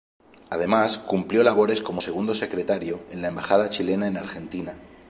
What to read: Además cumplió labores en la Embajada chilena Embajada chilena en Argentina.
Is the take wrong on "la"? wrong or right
right